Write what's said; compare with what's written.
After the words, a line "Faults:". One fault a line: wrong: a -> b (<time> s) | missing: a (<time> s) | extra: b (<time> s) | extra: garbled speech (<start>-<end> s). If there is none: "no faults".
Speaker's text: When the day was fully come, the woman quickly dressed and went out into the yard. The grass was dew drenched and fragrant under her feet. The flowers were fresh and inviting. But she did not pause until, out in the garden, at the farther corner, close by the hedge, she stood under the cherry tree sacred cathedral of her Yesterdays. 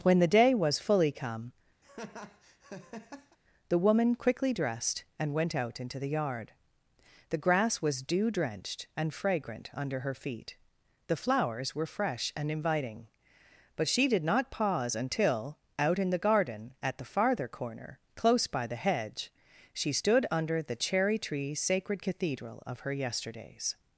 When the day was fully come, the woman quickly dressed and went out into the yard. The grass was dew drenched and fragrant under her feet. The flowers were fresh and inviting. But she did not pause until, out in the garden, at the farther corner, close by the hedge, she stood under the cherry tree sacred cathedral of her Yesterdays.
Faults:
no faults